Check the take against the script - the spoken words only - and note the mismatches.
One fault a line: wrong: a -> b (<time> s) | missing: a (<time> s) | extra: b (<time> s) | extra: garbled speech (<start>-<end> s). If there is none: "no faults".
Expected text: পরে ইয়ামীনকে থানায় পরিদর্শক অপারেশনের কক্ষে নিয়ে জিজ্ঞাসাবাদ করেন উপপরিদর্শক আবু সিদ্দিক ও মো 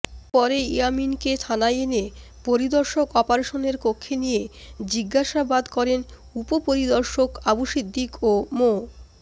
extra: এনে (1.8 s)